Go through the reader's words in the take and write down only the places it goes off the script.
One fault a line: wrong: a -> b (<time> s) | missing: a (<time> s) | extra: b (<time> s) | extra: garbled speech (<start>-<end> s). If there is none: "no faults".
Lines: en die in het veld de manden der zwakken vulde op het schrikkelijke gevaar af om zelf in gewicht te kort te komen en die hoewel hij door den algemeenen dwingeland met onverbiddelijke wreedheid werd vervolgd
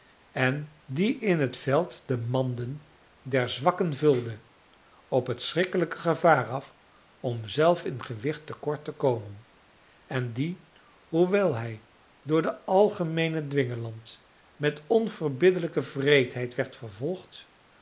no faults